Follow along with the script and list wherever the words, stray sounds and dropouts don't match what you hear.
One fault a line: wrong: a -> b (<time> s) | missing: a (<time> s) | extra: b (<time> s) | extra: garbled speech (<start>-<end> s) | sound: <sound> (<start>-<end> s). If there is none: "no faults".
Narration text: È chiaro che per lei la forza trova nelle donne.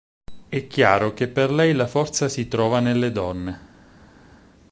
extra: si (2.3 s)